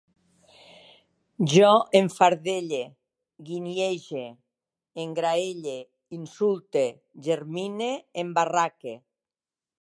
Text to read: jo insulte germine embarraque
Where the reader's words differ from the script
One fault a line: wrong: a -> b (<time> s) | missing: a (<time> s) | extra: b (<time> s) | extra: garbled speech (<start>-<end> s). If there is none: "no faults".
extra: enfardelle guinyege engraelle (2.0 s)